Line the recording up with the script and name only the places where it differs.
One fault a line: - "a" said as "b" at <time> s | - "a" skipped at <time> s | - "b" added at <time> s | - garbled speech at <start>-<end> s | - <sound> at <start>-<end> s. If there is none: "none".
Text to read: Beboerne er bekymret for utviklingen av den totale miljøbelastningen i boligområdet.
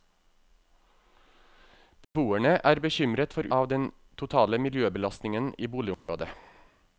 - dropout at 2.0-2.1 s
- "utviklingen" skipped at 3.5 s
- dropout at 5.9-6.1 s